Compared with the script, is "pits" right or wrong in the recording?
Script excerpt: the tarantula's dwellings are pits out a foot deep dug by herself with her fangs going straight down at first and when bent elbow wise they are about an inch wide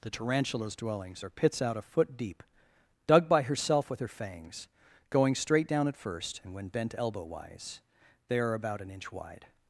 right